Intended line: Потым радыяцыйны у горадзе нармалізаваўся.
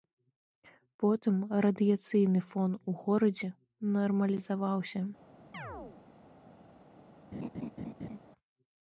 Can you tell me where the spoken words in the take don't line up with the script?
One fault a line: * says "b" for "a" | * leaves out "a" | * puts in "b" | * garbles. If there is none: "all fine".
* puts in "фон"